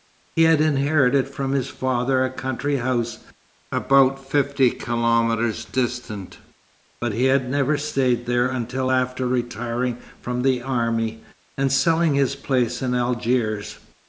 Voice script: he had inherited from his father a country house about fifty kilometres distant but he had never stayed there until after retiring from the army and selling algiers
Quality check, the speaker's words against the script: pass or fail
fail